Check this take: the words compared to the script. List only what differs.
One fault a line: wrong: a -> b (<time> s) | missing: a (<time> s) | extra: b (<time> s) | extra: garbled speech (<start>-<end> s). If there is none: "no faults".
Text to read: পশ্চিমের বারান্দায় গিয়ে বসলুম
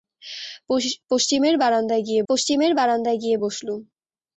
extra: পশ্চিমের বারান্দায় গিয়ে (2.3 s)